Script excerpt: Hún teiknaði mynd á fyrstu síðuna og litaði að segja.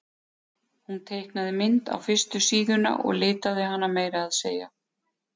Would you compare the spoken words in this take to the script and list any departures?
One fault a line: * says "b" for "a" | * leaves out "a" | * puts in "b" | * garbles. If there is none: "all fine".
* puts in "hana meira"